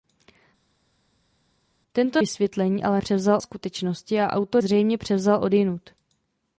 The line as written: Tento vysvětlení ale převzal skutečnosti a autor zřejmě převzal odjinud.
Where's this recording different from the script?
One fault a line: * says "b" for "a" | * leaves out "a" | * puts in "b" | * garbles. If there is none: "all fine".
all fine